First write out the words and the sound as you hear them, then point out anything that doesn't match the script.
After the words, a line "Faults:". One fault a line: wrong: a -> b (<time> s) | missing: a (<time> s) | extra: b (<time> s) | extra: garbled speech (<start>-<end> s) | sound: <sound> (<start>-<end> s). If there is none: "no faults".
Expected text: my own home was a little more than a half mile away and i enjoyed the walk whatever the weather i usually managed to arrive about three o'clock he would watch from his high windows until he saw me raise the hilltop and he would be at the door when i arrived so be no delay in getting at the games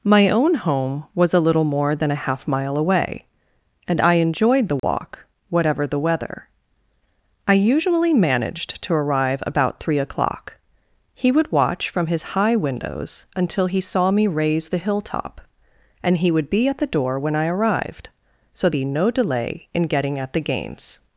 my own home was a little more than a half mile away and i enjoyed the walk whatever the weather i usually managed to arrive about three o'clock he would watch from his high windows until he saw me raise the hilltop and he would be at the door when i arrived so be no delay in getting at the games
Faults:
sound: dropout (4.8-4.8 s)